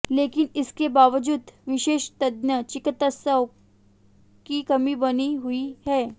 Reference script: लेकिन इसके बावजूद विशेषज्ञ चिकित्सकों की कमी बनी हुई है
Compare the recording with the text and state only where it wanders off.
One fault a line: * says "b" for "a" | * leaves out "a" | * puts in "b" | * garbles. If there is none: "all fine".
all fine